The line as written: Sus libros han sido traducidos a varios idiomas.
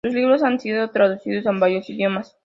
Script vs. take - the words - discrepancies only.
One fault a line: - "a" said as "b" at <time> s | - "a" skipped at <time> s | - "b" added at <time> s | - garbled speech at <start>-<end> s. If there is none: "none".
none